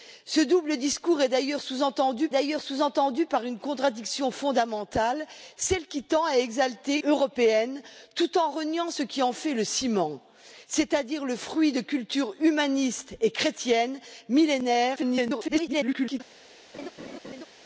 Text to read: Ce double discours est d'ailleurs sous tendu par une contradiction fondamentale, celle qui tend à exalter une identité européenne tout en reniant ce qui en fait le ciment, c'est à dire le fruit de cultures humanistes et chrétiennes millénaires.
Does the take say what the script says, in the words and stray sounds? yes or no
no